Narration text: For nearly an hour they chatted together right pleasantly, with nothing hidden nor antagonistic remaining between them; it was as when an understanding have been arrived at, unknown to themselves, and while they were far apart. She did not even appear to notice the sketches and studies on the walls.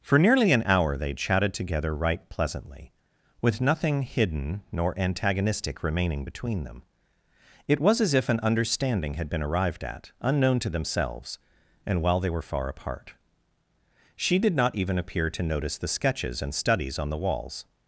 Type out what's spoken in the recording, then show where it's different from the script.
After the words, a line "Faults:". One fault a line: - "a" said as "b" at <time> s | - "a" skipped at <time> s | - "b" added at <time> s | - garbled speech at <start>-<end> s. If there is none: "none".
For nearly an hour they chatted together right pleasantly, with nothing hidden nor antagonistic remaining between them; it was as if an understanding had been arrived at, unknown to themselves, and while they were far apart. She did not even appear to notice the sketches and studies on the walls.
Faults:
- "when" said as "if" at 8.1 s
- "have" said as "had" at 9.1 s